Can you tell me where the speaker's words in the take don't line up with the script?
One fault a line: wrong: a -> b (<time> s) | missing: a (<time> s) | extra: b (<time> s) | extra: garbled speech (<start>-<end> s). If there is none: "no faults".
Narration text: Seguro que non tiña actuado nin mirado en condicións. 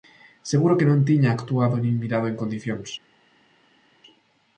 no faults